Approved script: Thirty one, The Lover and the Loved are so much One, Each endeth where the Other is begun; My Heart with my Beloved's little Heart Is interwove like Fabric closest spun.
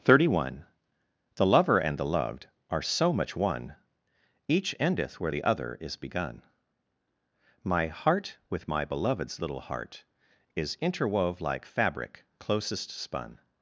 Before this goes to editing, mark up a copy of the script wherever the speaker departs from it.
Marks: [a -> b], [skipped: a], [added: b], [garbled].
Thirty one, The Lover and the Loved are so much One, Each endeth where the Other is begun; My Heart with my Beloved's little Heart Is interwove like Fabric closest spun.